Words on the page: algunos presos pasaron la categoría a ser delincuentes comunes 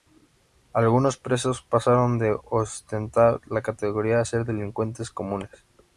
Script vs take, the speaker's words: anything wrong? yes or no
yes